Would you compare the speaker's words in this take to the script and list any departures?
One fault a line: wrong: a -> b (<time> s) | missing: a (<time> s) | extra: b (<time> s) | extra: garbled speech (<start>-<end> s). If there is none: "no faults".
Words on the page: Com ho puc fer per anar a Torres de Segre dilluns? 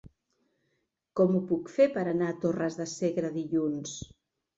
no faults